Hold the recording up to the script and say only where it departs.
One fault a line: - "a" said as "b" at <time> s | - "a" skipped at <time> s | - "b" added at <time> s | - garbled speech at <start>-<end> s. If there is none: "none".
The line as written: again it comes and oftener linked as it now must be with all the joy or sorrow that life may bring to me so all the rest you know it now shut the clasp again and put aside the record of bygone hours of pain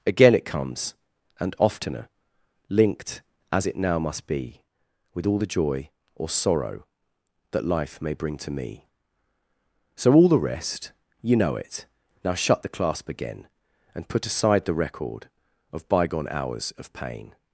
none